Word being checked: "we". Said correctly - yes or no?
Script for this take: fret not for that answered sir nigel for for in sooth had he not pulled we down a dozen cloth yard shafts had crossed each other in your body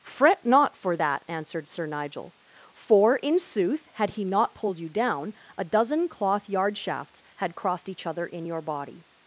no